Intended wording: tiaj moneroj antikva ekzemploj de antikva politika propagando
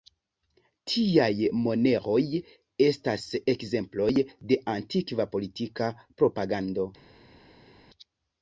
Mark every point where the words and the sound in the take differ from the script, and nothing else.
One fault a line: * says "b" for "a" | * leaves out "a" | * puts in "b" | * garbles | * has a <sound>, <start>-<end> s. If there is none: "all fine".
* says "estas" for "antikva"